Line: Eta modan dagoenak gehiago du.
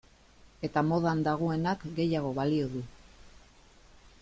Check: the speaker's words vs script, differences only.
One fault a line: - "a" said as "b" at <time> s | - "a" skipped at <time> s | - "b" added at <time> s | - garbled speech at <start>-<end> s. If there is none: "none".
- "balio" added at 2.4 s